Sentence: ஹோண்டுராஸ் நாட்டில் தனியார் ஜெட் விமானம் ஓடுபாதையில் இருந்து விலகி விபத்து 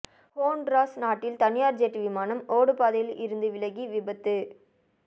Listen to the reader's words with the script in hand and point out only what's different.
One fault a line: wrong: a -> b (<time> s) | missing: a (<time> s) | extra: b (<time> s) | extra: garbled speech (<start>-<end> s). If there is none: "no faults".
no faults